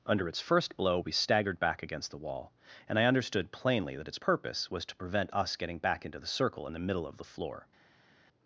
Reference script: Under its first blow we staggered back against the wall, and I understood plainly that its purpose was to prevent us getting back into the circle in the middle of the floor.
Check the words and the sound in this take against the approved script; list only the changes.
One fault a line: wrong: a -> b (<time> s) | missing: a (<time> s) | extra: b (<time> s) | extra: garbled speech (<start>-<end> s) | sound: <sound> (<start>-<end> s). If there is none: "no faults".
no faults